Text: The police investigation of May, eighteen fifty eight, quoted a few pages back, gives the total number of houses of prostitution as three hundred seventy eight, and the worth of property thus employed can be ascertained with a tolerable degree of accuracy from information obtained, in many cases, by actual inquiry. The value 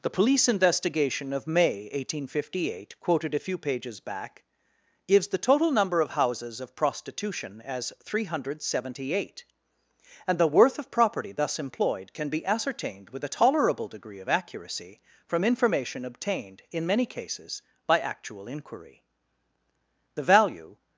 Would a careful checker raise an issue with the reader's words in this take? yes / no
no